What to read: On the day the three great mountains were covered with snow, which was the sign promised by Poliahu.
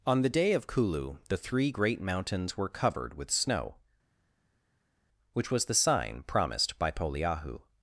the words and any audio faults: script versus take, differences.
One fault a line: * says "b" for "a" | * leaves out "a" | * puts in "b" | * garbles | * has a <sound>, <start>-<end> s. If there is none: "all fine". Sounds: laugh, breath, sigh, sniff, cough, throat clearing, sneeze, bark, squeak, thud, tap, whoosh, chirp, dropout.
* puts in "of kulu"